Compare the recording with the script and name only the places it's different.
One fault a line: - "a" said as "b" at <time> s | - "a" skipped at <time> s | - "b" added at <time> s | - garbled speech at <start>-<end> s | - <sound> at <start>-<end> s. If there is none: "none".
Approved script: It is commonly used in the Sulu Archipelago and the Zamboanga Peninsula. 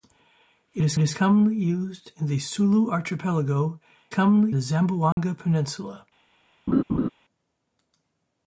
- "is" added at 1.0 s
- "and" said as "commonly" at 4.1 s
- dropout at 5.1-5.2 s
- laugh at 6.7-7.1 s